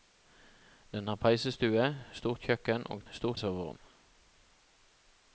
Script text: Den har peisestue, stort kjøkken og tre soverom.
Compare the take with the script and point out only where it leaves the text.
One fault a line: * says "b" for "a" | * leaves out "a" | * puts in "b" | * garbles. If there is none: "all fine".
* says "stort" for "tre"